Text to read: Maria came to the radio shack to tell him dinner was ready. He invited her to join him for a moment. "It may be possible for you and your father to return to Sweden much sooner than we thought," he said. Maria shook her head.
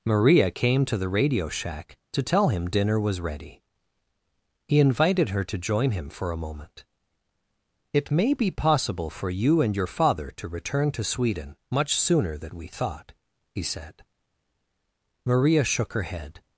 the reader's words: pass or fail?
pass